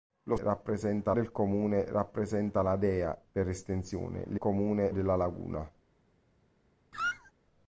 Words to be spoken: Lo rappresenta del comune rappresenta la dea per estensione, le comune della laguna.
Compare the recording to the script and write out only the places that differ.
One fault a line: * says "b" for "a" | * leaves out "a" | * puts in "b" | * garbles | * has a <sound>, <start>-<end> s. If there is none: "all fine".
* has a squeak, 6.9-7.3 s